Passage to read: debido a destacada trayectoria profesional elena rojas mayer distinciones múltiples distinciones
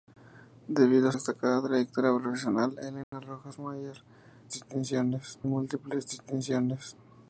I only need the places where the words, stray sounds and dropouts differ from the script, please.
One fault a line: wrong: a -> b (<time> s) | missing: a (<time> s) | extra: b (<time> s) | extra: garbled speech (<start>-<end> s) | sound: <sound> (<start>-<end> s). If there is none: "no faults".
sound: dropout (3.0-3.1 s)